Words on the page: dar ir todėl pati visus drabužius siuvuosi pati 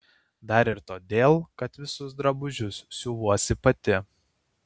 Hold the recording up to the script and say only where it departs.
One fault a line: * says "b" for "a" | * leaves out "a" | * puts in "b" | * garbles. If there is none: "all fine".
* says "kad" for "pati"